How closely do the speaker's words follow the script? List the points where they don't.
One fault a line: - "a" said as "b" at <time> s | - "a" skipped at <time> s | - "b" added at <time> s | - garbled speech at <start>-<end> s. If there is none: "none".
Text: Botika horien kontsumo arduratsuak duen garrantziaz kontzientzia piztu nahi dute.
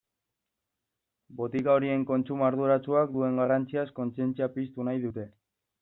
none